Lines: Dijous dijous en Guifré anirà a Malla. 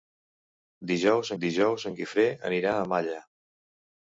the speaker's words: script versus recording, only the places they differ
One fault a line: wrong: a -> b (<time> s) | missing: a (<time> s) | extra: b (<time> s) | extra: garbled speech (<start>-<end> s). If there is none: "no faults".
no faults